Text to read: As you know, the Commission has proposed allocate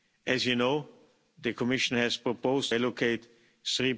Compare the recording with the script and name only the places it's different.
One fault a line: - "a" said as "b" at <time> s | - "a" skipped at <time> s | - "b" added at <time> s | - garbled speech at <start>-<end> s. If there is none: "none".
none